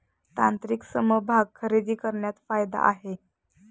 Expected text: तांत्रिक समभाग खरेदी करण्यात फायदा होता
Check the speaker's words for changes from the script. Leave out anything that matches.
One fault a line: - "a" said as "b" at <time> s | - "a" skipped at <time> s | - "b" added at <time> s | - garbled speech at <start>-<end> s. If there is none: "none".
- "होता" said as "आहे" at 2.9 s